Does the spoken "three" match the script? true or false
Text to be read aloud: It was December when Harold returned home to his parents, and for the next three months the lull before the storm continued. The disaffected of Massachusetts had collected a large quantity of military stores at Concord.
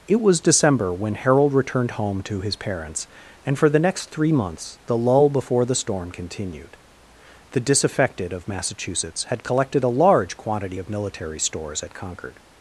true